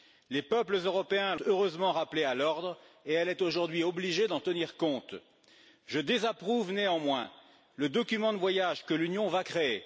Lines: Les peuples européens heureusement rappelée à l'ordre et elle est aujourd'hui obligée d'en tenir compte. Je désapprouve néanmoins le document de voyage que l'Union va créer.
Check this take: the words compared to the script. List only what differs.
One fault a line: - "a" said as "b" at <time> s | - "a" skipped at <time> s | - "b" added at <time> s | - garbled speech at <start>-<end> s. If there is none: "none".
none